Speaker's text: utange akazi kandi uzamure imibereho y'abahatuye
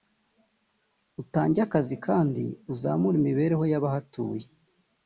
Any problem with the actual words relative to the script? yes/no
no